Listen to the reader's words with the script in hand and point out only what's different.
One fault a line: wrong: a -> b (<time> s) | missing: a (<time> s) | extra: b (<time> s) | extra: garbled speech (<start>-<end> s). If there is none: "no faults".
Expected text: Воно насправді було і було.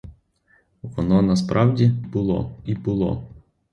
no faults